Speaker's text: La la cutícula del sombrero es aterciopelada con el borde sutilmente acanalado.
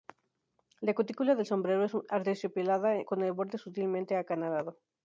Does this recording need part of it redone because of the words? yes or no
yes